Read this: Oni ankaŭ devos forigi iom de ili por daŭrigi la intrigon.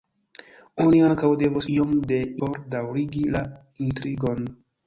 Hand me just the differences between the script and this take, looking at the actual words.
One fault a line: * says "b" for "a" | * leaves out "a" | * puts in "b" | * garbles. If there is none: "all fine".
* leaves out "forigi"
* leaves out "ili"